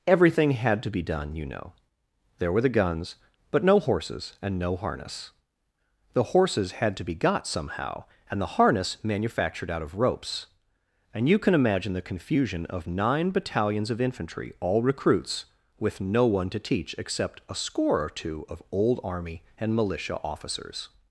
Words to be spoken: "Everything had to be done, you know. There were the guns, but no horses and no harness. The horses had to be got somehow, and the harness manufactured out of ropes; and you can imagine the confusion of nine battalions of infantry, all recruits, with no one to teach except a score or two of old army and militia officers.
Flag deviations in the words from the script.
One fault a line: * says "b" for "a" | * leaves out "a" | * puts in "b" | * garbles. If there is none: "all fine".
all fine